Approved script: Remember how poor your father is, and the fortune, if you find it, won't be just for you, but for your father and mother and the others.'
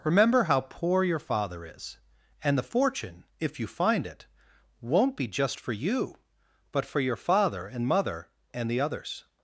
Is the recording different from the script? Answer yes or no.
no